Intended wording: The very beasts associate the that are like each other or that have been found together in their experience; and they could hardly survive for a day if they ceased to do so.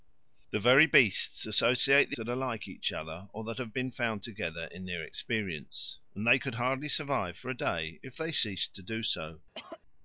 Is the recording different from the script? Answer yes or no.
no